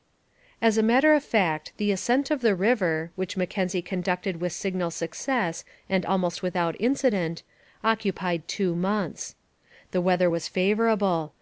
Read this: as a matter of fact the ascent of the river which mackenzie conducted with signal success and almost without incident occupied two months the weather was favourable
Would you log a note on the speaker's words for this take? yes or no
no